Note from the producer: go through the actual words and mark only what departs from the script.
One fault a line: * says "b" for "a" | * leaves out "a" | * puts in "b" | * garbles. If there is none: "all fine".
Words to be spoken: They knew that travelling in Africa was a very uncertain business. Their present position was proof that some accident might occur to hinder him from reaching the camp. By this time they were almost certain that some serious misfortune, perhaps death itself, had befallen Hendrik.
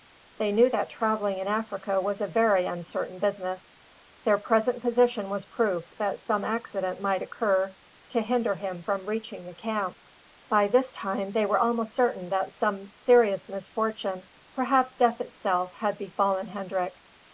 all fine